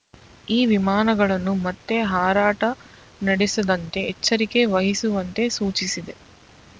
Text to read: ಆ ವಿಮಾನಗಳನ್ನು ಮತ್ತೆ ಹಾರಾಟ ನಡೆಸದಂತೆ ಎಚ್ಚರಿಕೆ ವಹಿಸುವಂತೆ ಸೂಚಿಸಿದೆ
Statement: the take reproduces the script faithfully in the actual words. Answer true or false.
false